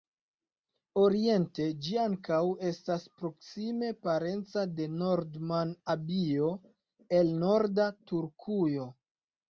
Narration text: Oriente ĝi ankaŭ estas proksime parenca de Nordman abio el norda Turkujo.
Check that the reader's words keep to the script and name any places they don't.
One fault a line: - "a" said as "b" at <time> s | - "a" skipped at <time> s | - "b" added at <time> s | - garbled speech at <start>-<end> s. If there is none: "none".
none